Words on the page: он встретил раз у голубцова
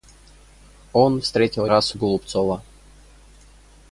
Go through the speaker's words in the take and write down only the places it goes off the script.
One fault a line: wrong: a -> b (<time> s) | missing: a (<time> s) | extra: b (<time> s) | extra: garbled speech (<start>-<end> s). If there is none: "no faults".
no faults